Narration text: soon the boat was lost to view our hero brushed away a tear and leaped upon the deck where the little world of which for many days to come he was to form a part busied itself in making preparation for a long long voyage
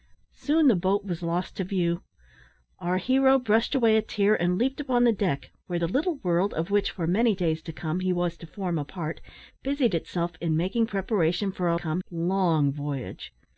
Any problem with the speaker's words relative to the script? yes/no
yes